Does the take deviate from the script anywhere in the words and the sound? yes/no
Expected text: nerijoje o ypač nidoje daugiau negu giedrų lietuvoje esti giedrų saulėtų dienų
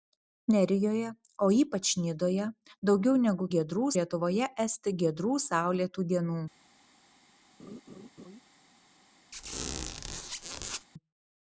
yes